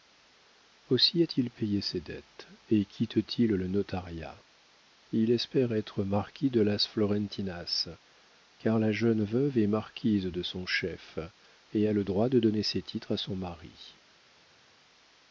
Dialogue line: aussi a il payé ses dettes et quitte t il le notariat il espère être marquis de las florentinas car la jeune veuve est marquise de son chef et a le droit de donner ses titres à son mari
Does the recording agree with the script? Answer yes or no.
no